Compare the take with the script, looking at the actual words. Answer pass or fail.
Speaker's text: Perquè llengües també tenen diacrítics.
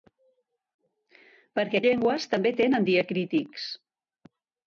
pass